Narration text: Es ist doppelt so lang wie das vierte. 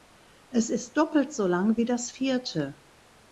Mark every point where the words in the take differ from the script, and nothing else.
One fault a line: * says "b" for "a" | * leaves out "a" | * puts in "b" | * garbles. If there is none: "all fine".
all fine